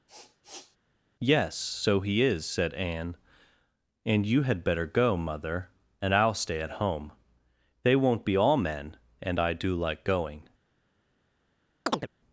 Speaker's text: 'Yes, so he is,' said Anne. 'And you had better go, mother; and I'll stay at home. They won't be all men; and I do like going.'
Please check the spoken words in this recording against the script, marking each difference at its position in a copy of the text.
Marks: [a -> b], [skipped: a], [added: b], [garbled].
'Yes, so he is,' said Anne. 'And you had better go, mother; and I'll stay at home. They won't be all men; and I do like going.'